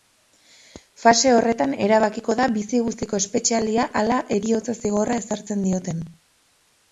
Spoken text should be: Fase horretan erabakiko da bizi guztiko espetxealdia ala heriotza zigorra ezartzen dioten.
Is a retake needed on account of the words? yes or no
no